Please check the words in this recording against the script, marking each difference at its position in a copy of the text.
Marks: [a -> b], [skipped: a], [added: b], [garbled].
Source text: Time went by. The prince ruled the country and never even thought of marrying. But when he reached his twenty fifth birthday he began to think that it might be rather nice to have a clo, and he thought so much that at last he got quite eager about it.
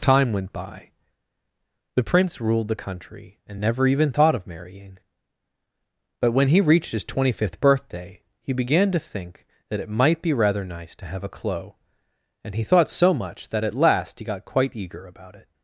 Time went by. The prince ruled the country and never even thought of marrying. But when he reached his twenty fifth birthday he began to think that it might be rather nice to have a clo, and he thought so much that at last he got quite eager about it.